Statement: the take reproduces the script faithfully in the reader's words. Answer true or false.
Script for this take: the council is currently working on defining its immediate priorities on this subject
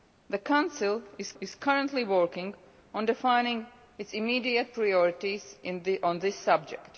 false